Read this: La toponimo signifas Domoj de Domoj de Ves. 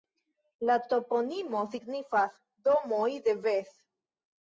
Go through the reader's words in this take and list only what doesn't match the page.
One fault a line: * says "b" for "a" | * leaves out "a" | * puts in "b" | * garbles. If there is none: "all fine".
* leaves out "Domoj de"